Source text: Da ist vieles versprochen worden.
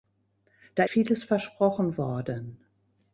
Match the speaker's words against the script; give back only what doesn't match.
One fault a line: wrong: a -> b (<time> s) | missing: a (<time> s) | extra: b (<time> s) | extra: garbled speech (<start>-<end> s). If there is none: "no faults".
missing: ist (0.8 s)